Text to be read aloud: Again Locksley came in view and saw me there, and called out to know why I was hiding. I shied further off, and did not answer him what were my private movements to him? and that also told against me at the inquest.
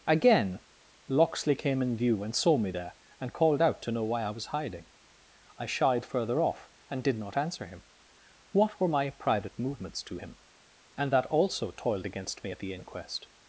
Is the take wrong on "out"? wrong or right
right